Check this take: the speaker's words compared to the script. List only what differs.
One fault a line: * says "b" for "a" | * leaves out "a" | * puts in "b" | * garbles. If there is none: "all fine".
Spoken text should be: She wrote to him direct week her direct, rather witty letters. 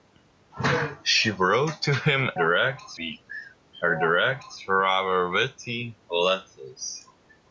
all fine